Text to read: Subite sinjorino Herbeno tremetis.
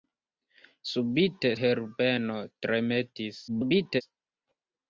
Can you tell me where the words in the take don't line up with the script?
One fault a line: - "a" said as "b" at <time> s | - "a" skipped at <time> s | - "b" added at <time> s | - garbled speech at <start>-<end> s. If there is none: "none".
- "sinjorino" skipped at 1.5 s
- garbled speech at 3.5-4.0 s